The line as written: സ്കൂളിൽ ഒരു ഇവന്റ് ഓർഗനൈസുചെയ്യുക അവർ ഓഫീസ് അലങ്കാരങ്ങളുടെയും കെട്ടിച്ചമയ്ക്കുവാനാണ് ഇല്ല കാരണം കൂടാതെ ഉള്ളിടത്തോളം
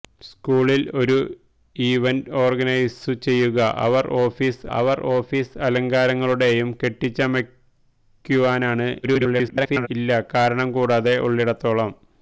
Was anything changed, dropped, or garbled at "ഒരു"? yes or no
no